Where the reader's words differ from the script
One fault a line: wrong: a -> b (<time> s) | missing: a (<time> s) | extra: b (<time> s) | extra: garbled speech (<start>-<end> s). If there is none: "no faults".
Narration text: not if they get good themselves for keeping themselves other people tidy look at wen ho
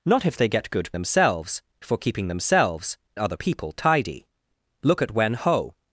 no faults